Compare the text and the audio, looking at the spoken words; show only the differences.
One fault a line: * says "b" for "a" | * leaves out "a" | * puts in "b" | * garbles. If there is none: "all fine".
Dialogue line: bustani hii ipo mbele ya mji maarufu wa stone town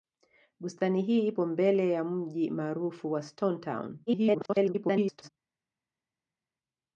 * garbles